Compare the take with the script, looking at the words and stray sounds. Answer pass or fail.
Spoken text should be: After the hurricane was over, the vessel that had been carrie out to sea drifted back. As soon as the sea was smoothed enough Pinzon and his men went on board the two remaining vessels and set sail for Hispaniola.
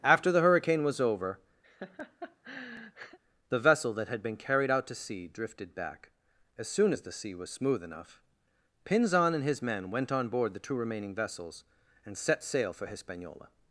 fail